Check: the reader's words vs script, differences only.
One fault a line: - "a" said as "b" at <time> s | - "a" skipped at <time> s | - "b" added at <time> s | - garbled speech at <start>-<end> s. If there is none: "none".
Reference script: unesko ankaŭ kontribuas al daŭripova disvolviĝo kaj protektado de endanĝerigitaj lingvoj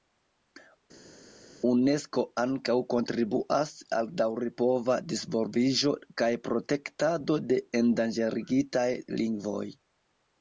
none